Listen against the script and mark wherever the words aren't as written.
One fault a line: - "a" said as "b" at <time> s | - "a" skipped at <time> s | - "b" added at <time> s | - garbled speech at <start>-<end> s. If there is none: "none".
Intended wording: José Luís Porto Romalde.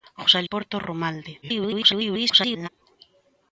- "Luís" skipped at 0.4 s
- garbled speech at 1.4-2.7 s